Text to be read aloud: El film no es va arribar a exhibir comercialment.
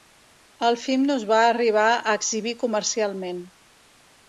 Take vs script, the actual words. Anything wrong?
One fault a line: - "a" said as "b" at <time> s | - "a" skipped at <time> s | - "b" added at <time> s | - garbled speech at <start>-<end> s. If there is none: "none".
none